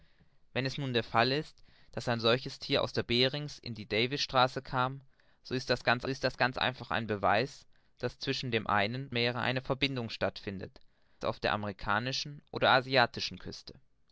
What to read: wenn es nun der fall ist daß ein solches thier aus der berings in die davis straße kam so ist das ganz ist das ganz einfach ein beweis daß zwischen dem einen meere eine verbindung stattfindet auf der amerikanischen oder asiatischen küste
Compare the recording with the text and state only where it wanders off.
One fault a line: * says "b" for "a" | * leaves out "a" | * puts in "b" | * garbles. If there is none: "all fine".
all fine